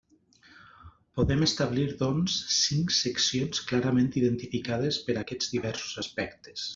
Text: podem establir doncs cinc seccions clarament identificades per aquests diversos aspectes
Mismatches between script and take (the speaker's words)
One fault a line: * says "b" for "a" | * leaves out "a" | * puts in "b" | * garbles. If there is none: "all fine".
all fine